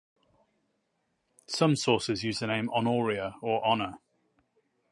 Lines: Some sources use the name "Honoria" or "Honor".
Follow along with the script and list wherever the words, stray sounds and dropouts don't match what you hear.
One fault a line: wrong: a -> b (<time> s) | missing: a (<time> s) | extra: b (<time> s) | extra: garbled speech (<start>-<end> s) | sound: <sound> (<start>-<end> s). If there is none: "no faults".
no faults